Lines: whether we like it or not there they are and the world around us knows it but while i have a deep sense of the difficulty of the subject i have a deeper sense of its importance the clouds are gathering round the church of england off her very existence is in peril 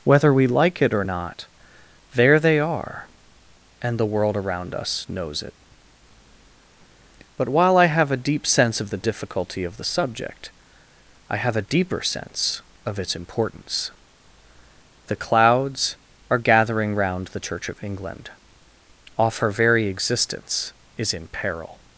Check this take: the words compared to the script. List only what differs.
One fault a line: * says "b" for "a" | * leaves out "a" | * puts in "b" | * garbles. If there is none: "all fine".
all fine